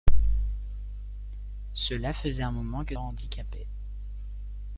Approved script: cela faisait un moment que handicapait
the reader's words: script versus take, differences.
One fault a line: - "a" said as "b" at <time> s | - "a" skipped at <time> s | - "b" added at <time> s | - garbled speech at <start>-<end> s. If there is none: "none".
none